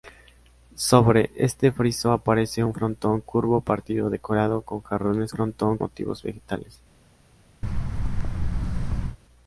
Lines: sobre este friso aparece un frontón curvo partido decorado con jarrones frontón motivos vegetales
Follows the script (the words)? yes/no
yes